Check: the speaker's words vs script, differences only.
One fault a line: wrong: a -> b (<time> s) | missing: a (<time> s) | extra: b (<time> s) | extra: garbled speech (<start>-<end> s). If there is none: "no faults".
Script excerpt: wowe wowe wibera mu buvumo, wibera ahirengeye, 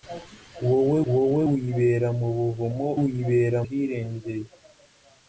no faults